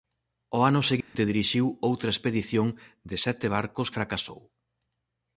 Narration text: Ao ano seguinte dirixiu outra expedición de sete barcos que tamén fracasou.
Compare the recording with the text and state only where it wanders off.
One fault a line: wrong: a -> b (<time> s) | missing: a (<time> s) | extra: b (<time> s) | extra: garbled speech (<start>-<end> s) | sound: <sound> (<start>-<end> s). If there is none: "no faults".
sound: dropout (1.0-1.2 s)
missing: que tamén (3.9 s)